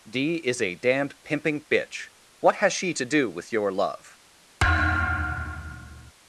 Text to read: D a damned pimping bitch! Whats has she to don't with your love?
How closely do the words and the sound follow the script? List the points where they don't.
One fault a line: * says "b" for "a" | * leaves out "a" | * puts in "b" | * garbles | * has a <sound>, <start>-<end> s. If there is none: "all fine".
* puts in "is"
* says "What" for "Whats"
* says "do" for "don't"
* has a thud, 4.6-6.1 s